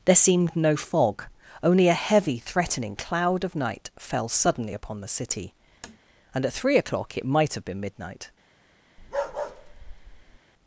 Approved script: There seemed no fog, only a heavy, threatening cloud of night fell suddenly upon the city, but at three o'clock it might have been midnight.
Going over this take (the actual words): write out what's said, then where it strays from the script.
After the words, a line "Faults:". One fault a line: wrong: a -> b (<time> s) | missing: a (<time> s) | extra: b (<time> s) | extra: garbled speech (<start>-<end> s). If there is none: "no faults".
There seemed no fog, only a heavy, threatening cloud of night fell suddenly upon the city, and at three o'clock it might have been midnight.
Faults:
wrong: but -> and (6.3 s)